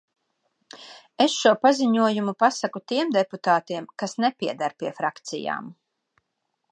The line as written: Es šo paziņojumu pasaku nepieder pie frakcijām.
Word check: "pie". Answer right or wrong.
right